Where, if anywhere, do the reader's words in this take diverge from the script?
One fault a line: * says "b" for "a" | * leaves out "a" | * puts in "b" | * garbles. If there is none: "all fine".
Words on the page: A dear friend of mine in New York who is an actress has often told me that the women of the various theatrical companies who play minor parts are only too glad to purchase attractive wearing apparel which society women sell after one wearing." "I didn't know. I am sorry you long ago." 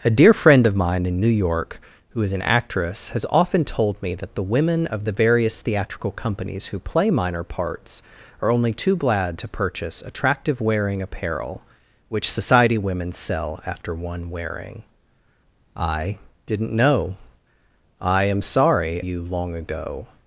all fine